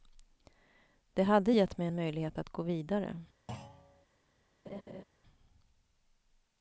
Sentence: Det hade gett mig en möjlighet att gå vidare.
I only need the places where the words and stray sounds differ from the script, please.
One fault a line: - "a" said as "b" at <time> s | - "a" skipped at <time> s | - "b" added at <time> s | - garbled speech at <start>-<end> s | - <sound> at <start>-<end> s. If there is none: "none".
- thud at 3.5-4.1 s
- laugh at 4.7-5.0 s